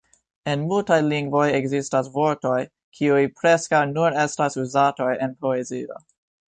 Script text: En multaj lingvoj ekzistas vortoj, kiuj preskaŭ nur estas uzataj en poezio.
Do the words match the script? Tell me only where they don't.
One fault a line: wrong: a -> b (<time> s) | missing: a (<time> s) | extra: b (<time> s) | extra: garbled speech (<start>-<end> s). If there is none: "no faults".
no faults